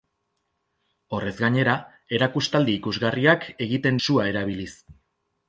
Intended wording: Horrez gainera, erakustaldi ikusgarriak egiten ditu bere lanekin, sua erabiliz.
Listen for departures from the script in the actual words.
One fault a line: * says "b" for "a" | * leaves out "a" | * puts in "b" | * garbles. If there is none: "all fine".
* leaves out "ditu bere lanekin"